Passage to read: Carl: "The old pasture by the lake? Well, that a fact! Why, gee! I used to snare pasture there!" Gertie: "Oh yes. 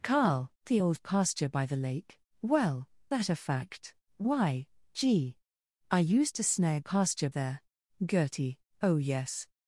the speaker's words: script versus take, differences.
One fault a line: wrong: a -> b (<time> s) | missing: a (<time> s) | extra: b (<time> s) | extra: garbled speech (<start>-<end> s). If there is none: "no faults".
no faults